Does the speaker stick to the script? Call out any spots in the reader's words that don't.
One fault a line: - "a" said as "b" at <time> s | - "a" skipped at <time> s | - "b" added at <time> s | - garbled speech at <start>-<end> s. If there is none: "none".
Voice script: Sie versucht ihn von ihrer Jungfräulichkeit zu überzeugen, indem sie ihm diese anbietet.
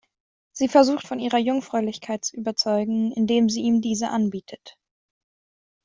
- "ihn" skipped at 1.1 s